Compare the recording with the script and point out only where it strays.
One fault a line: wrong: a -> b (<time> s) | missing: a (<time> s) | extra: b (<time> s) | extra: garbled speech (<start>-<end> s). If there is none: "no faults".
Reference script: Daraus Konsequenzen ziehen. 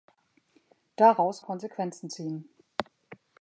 no faults